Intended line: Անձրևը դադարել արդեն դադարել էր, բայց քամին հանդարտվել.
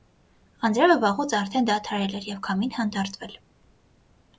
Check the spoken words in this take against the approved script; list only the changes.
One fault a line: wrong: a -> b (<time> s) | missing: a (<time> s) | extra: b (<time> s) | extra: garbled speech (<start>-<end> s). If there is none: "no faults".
wrong: դադարել -> վաղուց (1.0 s)
wrong: բայց -> և (2.3 s)